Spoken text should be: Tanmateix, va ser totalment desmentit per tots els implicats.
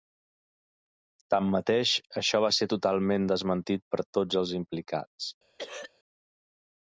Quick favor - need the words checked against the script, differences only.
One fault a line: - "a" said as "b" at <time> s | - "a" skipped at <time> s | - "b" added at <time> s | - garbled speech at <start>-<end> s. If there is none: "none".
- "això" added at 2.2 s